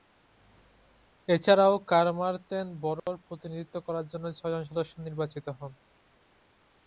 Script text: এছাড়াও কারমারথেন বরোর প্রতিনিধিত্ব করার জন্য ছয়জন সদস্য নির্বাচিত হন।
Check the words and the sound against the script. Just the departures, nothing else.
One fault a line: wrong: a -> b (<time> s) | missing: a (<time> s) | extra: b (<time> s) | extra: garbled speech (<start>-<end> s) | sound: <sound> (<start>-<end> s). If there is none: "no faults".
sound: dropout (3.0-3.1 s)